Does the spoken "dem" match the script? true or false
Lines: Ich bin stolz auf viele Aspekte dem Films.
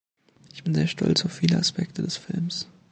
false